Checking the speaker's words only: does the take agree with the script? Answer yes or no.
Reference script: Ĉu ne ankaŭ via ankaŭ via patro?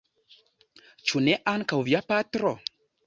no